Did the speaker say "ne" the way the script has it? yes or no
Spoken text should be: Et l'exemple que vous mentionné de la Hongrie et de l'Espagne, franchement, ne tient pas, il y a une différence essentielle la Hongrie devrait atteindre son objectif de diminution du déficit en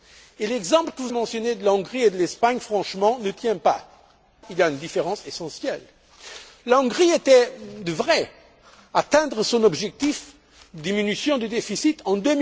yes